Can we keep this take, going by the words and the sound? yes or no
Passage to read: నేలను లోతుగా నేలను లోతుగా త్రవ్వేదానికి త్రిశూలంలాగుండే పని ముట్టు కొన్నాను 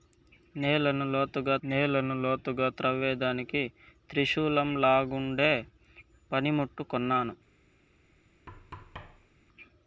no